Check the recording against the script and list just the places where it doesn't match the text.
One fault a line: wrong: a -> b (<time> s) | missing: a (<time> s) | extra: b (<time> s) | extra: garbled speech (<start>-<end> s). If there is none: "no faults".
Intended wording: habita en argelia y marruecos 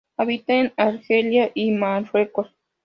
no faults